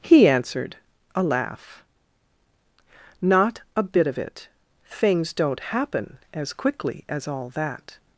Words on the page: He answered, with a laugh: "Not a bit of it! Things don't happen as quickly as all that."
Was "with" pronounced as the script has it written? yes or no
no